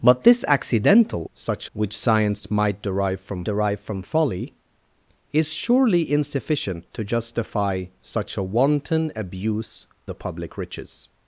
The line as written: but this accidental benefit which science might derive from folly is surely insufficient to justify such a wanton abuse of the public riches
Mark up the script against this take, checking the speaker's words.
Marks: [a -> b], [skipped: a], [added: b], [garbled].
but this accidental [benefit -> such] which science might derive from [added: derive from] folly is surely insufficient to justify such a wanton abuse [skipped: of] the public riches